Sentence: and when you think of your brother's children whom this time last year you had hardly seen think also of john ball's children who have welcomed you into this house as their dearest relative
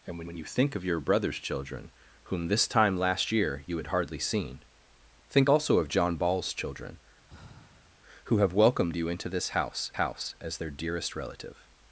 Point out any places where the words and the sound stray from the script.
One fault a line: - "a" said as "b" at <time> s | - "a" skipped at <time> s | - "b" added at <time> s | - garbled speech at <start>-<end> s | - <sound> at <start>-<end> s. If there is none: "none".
- "when" added at 0.3 s
- sigh at 7.3-8.0 s
- "house" added at 9.9 s